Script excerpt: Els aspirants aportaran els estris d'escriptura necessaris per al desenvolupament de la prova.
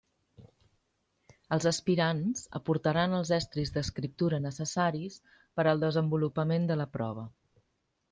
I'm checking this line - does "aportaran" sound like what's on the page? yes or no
yes